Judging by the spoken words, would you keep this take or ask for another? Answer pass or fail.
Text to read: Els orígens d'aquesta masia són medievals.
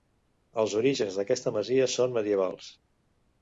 pass